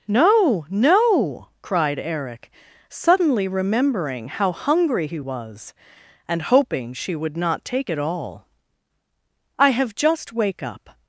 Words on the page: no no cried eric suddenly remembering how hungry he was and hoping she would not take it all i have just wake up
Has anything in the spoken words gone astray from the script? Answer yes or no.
no